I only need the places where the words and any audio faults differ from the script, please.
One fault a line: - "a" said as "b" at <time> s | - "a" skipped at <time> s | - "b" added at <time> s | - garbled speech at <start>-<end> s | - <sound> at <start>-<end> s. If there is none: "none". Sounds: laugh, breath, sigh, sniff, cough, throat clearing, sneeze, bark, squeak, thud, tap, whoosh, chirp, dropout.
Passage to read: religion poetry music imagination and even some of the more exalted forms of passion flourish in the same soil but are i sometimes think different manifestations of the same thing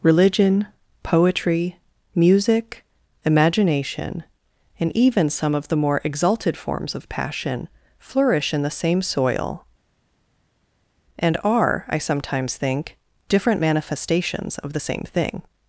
- "but" said as "and" at 11.2 s